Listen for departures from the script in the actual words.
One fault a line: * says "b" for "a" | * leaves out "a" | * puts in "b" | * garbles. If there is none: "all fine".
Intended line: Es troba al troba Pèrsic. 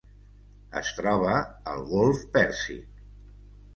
* says "golf" for "troba"